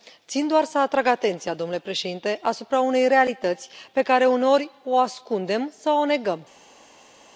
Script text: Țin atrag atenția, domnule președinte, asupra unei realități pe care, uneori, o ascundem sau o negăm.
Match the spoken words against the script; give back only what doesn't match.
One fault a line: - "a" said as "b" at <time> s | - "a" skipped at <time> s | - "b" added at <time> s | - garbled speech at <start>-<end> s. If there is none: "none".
- "doar să" added at 0.5 s